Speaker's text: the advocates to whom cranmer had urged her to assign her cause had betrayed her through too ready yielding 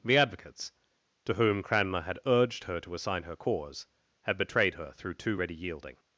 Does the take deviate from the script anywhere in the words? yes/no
no